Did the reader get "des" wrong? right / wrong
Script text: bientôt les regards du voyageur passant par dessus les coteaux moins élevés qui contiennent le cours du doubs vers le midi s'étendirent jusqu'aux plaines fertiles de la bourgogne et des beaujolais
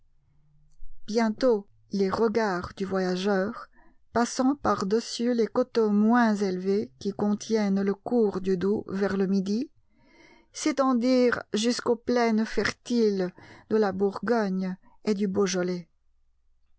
wrong